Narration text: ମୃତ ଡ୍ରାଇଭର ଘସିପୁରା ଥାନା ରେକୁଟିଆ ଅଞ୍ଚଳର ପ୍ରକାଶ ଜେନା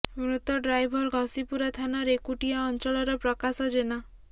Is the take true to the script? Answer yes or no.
yes